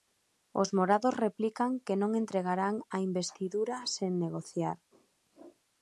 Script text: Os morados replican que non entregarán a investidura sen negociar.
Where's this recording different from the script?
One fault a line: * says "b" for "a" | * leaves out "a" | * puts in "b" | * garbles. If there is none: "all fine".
all fine